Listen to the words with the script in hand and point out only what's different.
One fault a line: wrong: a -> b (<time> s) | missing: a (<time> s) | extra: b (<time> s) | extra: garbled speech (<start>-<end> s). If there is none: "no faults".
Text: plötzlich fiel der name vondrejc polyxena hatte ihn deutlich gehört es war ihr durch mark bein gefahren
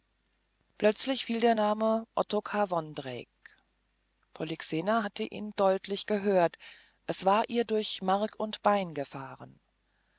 extra: ottokar (2.2 s)
extra: und (8.4 s)